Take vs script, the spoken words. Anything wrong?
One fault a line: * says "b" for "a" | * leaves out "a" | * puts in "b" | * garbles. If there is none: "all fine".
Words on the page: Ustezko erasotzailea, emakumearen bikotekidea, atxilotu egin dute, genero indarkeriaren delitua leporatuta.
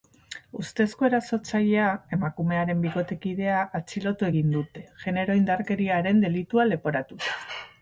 all fine